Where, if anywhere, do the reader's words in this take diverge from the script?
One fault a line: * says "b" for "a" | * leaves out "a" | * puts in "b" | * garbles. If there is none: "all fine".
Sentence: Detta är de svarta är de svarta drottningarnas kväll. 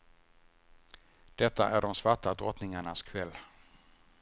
* leaves out "är de svarta"